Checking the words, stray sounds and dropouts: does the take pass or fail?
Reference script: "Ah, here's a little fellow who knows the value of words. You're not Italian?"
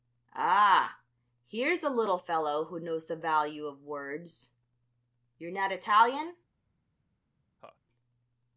fail